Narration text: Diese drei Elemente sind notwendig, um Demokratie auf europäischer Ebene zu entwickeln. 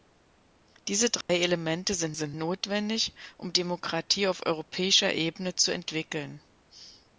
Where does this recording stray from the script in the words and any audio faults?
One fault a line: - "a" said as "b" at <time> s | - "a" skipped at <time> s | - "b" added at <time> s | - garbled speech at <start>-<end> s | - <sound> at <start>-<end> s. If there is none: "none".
- dropout at 1.2-1.3 s
- "sind" added at 2.1 s